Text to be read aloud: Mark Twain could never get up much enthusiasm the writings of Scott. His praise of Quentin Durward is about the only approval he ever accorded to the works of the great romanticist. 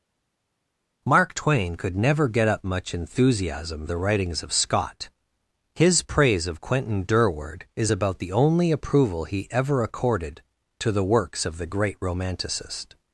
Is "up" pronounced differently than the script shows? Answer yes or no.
no